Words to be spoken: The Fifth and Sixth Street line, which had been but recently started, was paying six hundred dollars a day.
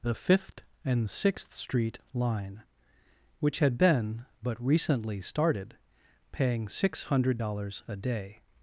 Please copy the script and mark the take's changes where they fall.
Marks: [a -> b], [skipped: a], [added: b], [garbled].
The Fifth and Sixth Street line, which had been but recently started, [skipped: was] paying six hundred dollars a day.